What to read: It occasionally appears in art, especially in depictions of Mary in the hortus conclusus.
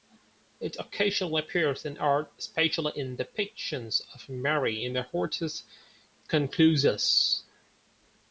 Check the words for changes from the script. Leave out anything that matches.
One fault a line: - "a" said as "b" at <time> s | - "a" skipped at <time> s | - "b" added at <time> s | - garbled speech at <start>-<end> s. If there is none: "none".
none